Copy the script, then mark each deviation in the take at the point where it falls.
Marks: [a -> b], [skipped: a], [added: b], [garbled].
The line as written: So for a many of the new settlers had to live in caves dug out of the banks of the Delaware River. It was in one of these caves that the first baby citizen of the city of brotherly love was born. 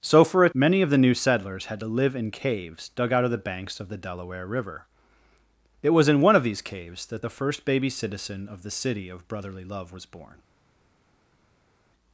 So for a many of the new settlers had to live in caves dug out of the banks of the Delaware River. It was in one of these caves that the first baby citizen of the city of brotherly love was born.